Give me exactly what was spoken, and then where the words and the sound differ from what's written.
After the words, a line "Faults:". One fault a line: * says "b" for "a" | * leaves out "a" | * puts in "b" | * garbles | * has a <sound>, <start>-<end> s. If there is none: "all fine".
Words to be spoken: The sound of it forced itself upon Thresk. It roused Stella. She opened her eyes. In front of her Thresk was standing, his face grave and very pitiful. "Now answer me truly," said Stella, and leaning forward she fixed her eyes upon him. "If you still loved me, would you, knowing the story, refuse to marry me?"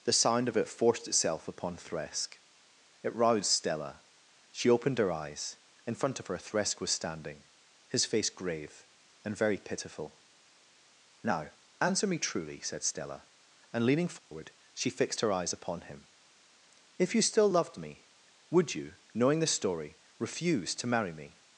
The sound of it forced itself upon Thresk. It roused Stella. She opened her eyes. In front of her Thresk was standing, his face grave and very pitiful. "Now answer me truly," said Stella, and leaning forward she fixed her eyes upon him. "If you still loved me, would you, knowing the story, refuse to marry me?"
Faults:
* has a dropout, 14.2-14.3 s